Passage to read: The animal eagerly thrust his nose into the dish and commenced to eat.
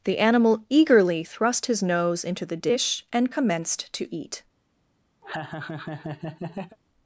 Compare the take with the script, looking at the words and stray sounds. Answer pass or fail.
fail